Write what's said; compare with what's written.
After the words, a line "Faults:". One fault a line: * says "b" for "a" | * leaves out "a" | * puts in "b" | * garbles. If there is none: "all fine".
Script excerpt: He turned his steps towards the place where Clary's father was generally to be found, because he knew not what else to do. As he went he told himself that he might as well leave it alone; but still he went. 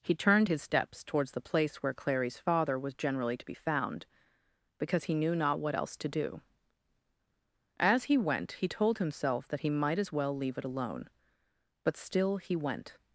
He turned his steps towards the place where Clary's father was generally to be found, because he knew not what else to do. As he went he told himself that he might as well leave it alone; but still he went.
Faults:
all fine